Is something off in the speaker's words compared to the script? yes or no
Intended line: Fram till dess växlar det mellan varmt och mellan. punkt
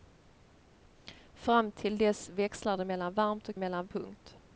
no